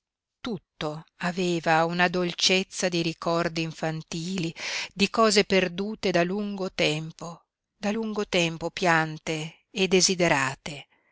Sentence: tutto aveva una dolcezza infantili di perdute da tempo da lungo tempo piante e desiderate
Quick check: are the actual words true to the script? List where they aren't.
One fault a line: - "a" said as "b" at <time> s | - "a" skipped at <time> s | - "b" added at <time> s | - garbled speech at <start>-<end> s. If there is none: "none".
- "di ricordi" added at 2.9 s
- "cose" added at 5.1 s
- "lungo" added at 6.2 s